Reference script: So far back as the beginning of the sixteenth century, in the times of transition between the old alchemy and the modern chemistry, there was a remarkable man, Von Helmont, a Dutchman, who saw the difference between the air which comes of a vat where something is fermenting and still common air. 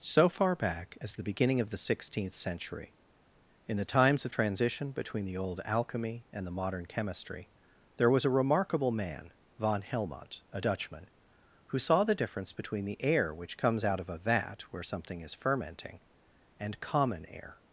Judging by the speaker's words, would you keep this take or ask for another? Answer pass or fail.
fail